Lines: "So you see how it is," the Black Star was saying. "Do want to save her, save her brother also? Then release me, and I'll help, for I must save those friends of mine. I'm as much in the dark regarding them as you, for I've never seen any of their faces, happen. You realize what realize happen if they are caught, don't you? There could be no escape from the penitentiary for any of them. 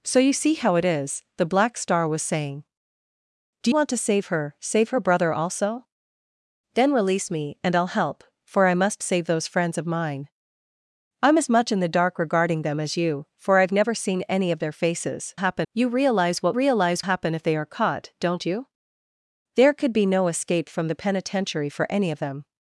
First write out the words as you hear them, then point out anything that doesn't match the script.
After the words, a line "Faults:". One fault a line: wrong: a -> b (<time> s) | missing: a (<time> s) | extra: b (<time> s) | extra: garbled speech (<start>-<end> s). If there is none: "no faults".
"So you see how it is," the Black Star was saying. "Do want to save her, save her brother also? Then release me, and I'll help, for I must save those friends of mine. I'm as much in the dark regarding them as you, for I've never seen any of their faces, happen. You realize what realize happen if they are caught, don't you? There could be no escape from the penitentiary for any of them.
Faults:
no faults